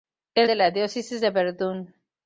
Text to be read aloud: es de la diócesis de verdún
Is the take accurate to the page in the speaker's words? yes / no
yes